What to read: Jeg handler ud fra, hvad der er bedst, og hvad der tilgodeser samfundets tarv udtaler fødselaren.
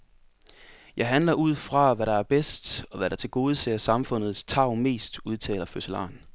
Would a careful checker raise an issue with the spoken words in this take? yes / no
yes